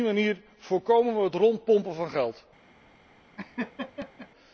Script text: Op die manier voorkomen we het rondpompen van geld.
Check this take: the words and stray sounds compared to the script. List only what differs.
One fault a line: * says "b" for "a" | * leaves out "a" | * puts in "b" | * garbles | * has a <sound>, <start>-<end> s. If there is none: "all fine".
* has a laugh, 3.4-4.3 s